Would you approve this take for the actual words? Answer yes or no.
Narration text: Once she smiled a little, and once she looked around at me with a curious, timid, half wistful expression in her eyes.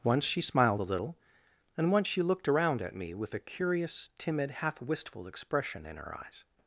yes